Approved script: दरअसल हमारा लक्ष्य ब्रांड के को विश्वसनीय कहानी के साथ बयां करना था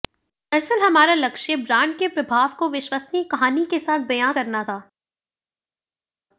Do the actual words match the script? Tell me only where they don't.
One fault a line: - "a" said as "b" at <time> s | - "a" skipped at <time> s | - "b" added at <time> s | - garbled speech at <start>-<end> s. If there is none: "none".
- "प्रभाव" added at 2.1 s